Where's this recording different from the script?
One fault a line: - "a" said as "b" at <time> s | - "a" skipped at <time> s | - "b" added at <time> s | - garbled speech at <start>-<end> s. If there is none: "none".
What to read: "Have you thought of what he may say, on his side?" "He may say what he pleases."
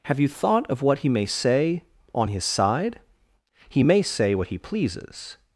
none